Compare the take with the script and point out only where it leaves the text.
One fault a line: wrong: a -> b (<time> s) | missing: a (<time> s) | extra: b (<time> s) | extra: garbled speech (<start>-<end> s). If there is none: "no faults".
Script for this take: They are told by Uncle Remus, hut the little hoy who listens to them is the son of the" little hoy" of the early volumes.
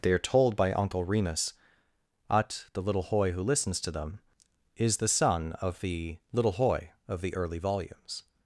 wrong: hut -> ut (2.3 s)